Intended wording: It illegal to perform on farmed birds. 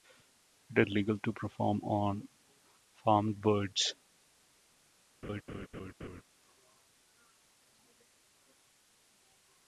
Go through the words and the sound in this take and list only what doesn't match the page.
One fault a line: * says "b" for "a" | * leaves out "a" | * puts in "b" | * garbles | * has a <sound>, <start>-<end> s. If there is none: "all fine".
* has a laugh, 5.2-6.2 s